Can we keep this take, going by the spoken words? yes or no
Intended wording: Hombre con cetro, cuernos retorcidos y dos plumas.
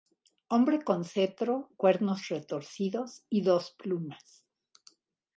yes